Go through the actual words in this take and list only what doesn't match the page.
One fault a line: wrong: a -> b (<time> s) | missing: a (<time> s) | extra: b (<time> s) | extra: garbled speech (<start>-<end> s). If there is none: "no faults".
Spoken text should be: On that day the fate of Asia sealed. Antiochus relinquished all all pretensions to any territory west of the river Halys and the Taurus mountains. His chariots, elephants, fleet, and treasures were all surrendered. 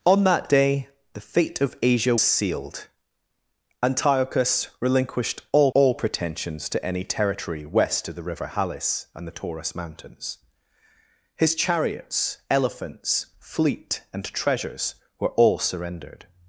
no faults